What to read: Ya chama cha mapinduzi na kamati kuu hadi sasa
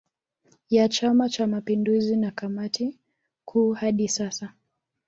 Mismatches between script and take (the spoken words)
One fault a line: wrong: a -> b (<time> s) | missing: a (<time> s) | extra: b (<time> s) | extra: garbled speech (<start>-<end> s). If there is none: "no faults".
no faults